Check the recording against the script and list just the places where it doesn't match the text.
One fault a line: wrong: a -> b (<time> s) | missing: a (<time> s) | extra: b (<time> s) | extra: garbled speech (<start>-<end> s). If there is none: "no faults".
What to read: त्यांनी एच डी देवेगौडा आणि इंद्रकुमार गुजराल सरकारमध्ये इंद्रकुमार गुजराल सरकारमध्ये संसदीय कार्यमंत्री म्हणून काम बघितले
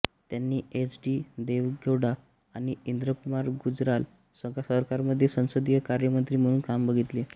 missing: इंद्रकुमार गुजराल सरकारमध्ये (5.3 s)